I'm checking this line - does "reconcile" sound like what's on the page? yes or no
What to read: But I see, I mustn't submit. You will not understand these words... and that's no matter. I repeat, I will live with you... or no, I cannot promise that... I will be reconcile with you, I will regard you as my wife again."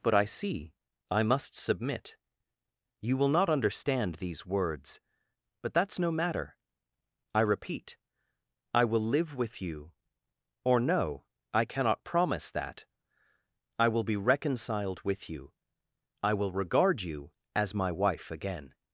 no